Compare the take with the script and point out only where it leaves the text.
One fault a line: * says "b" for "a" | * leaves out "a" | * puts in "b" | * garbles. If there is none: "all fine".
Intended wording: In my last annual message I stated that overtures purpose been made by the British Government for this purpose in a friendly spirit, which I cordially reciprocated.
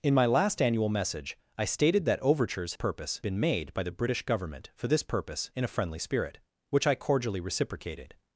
all fine